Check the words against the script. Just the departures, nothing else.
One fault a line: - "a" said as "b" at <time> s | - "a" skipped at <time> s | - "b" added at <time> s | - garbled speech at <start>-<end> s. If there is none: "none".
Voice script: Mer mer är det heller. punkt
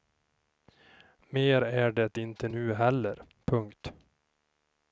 - "mer" skipped at 1.6 s
- "inte nu" added at 2.2 s